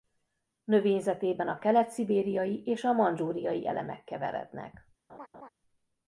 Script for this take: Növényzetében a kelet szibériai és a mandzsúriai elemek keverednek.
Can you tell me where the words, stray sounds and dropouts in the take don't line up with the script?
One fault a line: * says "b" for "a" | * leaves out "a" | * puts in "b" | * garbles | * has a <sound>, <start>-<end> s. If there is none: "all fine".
* has a laugh, 5.1-5.5 s